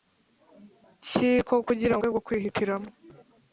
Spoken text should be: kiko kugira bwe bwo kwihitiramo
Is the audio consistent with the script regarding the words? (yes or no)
yes